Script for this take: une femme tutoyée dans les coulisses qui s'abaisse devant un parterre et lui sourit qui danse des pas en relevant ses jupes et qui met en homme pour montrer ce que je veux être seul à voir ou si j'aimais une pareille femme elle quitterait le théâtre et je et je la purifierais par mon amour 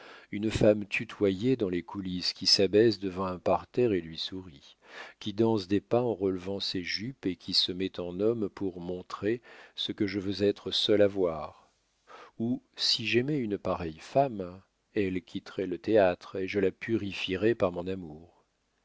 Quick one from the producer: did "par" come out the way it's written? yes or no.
yes